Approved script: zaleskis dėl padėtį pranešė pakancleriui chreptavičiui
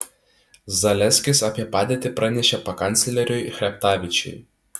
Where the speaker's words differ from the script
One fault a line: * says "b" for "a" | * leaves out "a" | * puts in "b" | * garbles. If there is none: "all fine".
* says "apie" for "dėl"